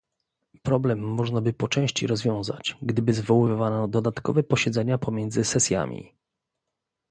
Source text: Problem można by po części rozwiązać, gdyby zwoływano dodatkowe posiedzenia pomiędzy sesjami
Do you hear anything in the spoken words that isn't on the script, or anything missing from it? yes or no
no